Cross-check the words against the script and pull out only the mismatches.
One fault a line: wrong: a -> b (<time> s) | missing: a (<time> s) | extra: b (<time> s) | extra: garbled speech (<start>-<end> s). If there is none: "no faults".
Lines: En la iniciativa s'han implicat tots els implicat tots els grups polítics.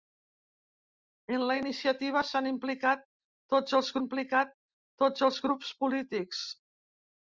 no faults